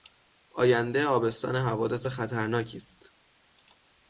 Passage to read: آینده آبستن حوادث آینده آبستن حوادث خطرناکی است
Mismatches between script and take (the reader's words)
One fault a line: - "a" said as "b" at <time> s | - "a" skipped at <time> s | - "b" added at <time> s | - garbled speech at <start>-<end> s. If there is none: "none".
- "آینده آبستن حوادث" skipped at 2.1 s